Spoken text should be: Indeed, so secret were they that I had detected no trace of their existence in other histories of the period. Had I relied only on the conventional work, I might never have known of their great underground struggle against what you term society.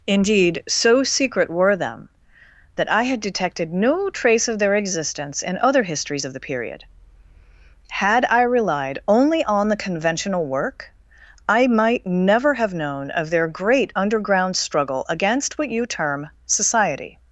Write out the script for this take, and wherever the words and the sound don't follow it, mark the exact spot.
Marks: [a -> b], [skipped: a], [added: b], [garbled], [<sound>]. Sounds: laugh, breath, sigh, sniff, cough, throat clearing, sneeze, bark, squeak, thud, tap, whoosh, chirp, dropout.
Indeed, so secret were [they -> them] that I had detected no trace of their existence in other histories of the period. Had I relied only on the conventional work, I might never have known of their great underground struggle against what you term society.